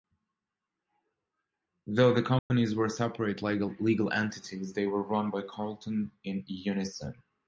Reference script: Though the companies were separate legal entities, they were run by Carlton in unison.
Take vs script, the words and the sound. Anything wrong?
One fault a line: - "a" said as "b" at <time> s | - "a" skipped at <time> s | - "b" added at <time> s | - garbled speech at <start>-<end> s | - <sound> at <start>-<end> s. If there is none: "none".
- dropout at 2.4-2.5 s